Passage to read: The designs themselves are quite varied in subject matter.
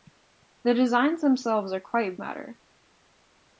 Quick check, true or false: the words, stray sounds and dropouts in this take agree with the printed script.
false